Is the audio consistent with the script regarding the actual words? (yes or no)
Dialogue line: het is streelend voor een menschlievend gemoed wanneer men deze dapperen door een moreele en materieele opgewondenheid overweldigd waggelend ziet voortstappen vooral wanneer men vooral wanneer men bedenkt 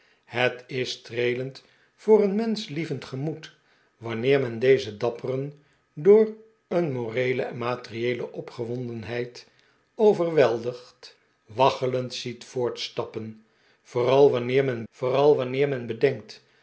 yes